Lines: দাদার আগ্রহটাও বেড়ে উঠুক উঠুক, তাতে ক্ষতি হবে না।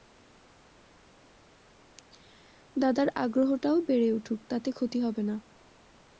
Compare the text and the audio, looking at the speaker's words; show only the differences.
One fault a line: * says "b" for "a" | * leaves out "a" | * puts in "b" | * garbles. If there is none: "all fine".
* leaves out "উঠুক"